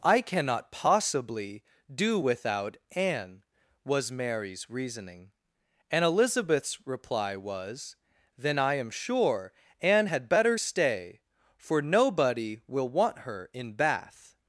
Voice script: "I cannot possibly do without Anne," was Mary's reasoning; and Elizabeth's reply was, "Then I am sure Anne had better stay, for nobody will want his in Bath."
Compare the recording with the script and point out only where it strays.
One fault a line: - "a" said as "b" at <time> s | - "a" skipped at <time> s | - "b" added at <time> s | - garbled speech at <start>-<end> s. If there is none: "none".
- "his" said as "her" at 13.2 s